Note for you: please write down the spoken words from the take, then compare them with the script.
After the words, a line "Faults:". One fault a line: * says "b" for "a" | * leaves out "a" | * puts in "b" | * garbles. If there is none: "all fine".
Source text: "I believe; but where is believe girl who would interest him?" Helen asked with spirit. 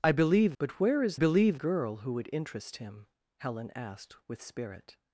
"I believe; but where is believe girl who would interest him?" Helen asked with spirit.
Faults:
all fine